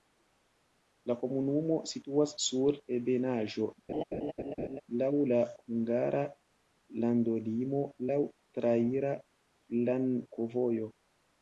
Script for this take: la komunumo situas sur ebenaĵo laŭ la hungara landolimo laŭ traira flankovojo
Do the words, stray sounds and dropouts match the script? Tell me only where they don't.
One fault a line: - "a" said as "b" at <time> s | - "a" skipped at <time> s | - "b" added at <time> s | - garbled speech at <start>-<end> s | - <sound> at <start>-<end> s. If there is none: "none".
- laugh at 3.9-4.8 s